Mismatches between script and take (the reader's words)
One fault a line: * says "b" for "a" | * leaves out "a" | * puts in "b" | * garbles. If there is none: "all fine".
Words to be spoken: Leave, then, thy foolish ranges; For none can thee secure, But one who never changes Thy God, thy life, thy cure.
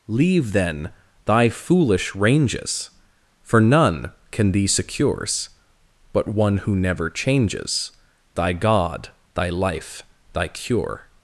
* says "secures" for "secure"